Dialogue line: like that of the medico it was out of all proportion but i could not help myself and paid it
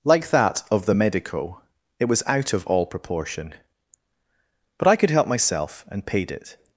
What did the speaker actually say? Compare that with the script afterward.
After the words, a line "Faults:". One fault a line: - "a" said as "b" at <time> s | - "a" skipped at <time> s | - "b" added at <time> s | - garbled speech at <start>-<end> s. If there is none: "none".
like that of the medico it was out of all proportion but i could help myself and paid it
Faults:
- "not" skipped at 5.1 s